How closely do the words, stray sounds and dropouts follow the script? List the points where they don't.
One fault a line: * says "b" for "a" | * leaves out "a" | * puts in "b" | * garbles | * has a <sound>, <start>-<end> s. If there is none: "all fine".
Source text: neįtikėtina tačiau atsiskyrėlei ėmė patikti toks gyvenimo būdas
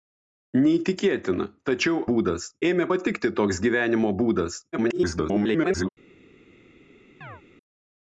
* says "būdas" for "atsiskyrėlei"
* garbles
* has a chirp, 7.2-7.4 s